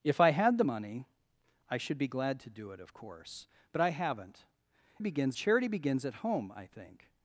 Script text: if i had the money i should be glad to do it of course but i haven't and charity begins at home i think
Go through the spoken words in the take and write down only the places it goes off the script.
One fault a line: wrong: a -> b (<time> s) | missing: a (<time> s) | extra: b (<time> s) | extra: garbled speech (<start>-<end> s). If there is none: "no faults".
wrong: and -> begins (5.0 s)